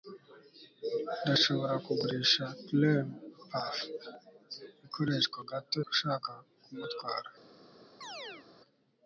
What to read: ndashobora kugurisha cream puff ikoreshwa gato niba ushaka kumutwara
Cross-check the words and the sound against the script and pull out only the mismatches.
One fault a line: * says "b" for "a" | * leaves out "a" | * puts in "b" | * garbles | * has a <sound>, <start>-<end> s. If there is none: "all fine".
* leaves out "niba"
* has a chirp, 8.0-8.5 s